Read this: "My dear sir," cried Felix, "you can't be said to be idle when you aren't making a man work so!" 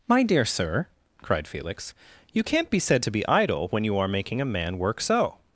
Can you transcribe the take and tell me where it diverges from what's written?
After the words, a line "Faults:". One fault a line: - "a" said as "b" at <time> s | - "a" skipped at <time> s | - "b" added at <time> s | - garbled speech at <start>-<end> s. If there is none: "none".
"My dear sir," cried Felix, "you can't be said to be idle when you are making a man work so!"
Faults:
- "aren't" said as "are" at 4.0 s